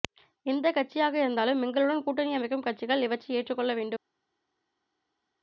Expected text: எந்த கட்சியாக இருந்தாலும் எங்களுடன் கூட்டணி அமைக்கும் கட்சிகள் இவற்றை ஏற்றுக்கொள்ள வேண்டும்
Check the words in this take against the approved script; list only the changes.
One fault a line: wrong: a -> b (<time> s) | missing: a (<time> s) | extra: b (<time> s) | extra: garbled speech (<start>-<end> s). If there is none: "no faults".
no faults